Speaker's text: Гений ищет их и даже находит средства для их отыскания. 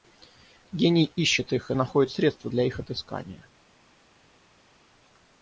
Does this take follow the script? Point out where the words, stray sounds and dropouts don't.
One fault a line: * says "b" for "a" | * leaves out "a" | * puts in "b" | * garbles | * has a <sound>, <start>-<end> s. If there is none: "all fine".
* leaves out "даже"